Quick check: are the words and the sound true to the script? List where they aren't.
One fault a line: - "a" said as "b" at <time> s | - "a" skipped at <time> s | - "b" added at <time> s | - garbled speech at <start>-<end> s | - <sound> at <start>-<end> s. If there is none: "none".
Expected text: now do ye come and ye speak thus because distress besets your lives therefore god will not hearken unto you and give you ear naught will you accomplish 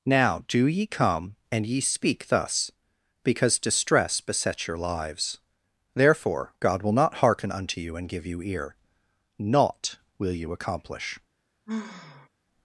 - sigh at 11.7-12.3 s